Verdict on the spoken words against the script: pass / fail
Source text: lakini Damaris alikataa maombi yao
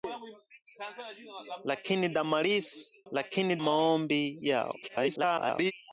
fail